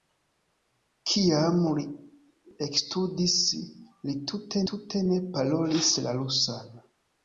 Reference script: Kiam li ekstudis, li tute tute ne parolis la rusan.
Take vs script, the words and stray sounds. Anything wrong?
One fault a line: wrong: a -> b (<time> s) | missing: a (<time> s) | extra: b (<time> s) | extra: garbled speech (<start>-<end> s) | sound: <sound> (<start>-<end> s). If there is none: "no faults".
no faults